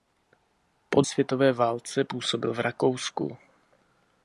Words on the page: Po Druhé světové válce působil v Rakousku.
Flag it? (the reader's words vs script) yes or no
yes